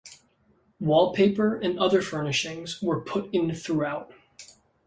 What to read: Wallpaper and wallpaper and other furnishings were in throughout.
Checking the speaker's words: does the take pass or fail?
fail